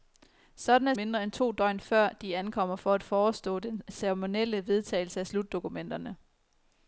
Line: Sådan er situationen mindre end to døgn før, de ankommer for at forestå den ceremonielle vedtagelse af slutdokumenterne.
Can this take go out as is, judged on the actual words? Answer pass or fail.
fail